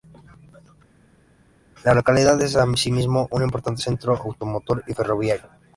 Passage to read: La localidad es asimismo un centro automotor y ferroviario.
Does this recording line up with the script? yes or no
no